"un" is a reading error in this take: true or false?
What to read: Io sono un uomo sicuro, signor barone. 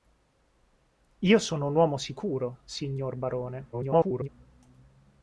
false